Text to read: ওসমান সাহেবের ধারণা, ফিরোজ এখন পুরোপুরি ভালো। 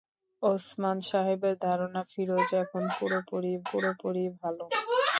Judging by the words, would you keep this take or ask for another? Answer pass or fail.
fail